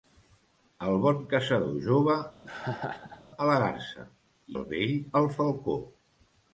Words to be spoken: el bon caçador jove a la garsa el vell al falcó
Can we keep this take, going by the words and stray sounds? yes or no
no